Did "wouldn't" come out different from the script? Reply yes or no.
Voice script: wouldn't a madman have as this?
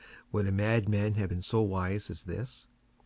yes